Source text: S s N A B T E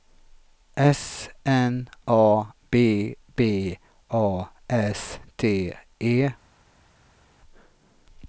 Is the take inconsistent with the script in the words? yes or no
yes